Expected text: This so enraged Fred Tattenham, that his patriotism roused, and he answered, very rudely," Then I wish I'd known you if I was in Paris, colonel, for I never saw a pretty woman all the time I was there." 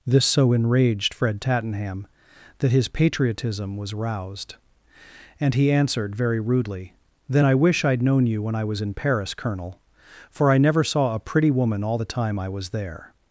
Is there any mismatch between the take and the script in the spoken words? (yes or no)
yes